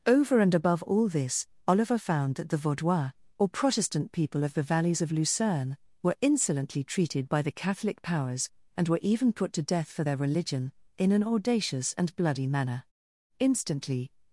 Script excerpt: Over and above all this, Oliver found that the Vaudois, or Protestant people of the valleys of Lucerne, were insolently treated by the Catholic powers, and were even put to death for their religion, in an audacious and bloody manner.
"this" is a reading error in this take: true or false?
false